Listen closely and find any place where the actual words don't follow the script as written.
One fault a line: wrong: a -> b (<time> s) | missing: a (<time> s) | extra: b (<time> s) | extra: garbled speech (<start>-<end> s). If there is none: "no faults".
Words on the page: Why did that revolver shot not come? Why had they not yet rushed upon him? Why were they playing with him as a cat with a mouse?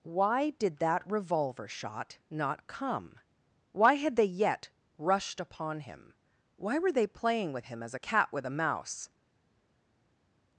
missing: not (4.2 s)